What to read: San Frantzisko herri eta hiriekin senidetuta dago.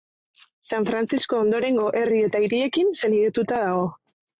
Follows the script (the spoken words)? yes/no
no